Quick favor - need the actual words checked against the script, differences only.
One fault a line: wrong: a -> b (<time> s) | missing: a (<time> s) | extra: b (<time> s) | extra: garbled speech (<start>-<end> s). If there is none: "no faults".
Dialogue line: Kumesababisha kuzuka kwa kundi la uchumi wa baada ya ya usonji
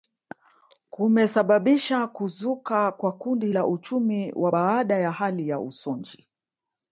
extra: hali (5.1 s)